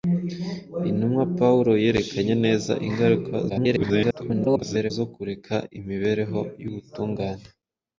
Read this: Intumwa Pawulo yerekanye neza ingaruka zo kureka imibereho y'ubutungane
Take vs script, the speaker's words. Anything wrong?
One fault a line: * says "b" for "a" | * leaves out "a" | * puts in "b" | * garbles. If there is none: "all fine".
* garbles